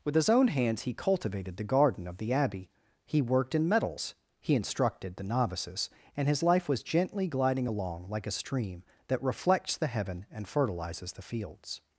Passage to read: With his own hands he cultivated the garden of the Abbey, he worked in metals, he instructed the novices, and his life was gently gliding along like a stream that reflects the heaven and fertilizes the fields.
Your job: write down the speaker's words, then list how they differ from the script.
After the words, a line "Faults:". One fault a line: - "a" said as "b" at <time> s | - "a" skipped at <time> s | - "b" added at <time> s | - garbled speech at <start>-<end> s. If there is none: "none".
With his own hands he cultivated the garden of the Abbey, he worked in metals, he instructed the novices, and his life was gently gliding along like a stream that reflects the heaven and fertilizes the fields.
Faults:
none